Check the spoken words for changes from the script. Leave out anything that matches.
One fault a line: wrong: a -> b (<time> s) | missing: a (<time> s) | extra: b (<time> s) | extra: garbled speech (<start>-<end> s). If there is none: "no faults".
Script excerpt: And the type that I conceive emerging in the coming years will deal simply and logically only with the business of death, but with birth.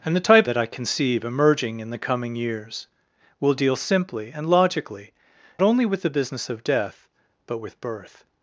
no faults